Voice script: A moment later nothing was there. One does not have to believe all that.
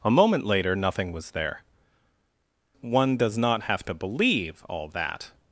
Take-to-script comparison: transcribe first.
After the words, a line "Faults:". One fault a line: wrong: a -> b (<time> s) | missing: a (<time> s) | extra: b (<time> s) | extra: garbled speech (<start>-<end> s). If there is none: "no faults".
A moment later nothing was there. One does not have to believe all that.
Faults:
no faults